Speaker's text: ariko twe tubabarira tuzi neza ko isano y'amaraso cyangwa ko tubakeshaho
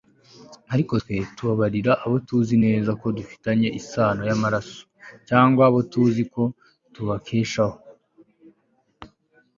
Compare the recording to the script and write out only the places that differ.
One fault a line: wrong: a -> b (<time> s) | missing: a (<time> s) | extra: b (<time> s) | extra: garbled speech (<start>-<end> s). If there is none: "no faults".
extra: abo (2.0 s)
extra: dufitanye (3.2 s)
extra: abo tuzi (5.7 s)